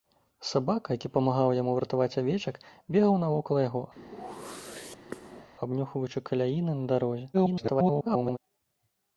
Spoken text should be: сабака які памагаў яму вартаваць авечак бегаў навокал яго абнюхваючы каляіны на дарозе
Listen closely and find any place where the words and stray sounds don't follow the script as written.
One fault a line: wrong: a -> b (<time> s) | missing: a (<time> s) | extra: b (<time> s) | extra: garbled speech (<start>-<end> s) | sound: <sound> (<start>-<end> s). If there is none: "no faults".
sound: whoosh (4.0-5.5 s)
extra: garbled speech (7.3-8.4 s)